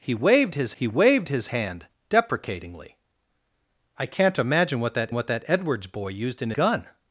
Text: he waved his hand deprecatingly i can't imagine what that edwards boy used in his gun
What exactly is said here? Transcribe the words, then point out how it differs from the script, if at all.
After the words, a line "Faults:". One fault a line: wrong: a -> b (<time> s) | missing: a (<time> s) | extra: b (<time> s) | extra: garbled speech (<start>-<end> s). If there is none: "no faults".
he waved his he waved his hand deprecatingly i can't imagine what that what that edwards boy used in gun
Faults:
extra: he waved his (0.7 s)
extra: what that (5.1 s)
missing: his (6.5 s)